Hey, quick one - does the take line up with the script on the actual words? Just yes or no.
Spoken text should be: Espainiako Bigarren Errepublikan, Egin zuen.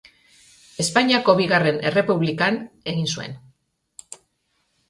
yes